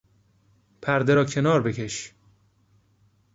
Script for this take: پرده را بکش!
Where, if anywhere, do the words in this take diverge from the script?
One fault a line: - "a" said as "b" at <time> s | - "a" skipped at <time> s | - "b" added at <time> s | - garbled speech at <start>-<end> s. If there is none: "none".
- "کنار" added at 1.2 s